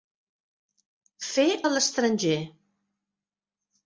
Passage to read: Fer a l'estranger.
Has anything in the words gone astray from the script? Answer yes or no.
no